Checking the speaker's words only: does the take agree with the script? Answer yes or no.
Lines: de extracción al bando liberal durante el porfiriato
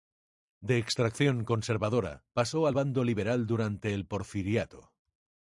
no